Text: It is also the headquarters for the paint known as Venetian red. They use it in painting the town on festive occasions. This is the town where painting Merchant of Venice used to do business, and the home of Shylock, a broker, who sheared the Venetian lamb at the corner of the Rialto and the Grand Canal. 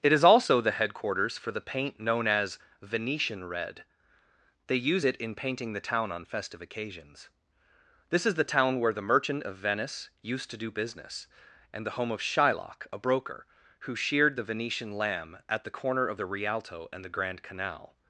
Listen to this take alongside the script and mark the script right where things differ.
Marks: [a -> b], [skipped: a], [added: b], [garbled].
It is also the headquarters for the paint known as Venetian red. They use it in painting the town on festive occasions. This is the town where [painting -> the] Merchant of Venice used to do business, and the home of Shylock, a broker, who sheared the Venetian lamb at the corner of the Rialto and the Grand Canal.